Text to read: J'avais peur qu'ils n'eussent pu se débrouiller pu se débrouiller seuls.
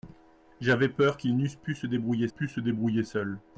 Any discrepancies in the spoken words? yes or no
no